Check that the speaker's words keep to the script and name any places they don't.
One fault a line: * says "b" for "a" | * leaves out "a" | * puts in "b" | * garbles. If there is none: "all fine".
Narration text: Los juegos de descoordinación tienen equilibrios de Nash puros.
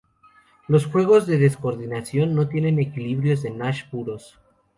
* puts in "no"